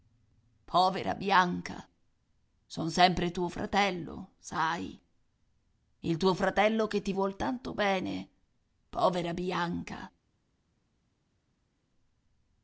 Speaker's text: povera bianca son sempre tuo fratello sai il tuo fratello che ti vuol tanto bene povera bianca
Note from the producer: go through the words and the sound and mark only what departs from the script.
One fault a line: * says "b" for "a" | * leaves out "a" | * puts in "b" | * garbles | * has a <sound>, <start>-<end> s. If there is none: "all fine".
all fine